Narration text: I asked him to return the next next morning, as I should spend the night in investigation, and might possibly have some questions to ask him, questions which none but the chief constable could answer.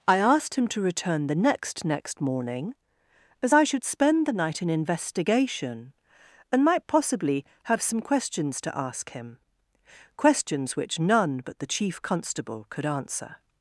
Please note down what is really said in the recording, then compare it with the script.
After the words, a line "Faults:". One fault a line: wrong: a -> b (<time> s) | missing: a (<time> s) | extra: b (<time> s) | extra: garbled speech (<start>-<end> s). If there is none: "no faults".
I asked him to return the next next morning, as I should spend the night in investigation, and might possibly have some questions to ask him, questions which none but the chief constable could answer.
Faults:
no faults